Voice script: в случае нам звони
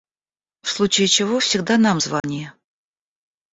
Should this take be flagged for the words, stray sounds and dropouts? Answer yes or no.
yes